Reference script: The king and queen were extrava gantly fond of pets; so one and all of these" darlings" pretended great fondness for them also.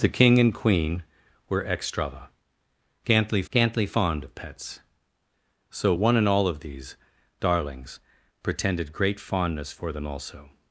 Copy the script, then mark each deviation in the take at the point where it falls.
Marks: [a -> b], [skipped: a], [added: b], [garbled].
The king and queen were extrava gantly [added: gantly] fond of pets; so one and all of these" darlings" pretended great fondness for them also.